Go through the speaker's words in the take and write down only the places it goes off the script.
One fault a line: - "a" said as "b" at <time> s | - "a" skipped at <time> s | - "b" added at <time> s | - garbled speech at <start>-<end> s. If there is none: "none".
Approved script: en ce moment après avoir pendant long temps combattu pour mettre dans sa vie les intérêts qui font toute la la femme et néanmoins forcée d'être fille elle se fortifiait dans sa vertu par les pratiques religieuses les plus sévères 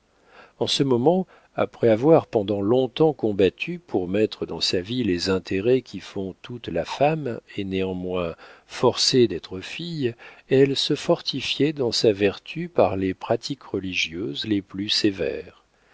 - "la" skipped at 6.8 s